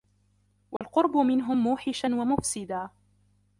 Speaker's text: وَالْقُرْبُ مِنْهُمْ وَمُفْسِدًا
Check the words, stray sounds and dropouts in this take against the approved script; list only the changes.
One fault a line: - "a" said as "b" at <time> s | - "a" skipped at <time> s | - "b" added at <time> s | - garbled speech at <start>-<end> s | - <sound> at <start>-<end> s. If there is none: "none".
- dropout at 0.8-0.8 s
- "مُوحِشًا" added at 1.6 s